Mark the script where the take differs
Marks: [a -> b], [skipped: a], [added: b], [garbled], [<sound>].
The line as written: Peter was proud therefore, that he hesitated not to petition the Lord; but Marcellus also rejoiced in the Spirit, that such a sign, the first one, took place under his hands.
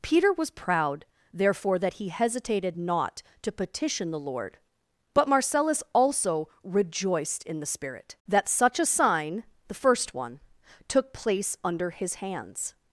Peter was proud therefore, that he hesitated not to petition the Lord; but Marcellus also rejoiced in the Spirit, that such a sign, the first one, took place under his hands.